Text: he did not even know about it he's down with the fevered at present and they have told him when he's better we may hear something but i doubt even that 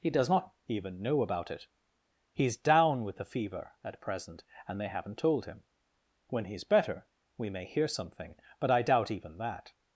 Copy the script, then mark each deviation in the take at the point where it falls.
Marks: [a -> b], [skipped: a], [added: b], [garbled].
he [did -> does] not even know about it he's down with the [fevered -> fever] at present and they [have -> haven't] told him when he's better we may hear something but i doubt even that